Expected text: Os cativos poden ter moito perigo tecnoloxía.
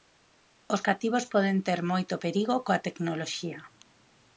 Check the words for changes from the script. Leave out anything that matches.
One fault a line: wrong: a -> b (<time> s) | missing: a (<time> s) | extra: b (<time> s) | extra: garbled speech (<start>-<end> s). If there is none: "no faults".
extra: coa (2.6 s)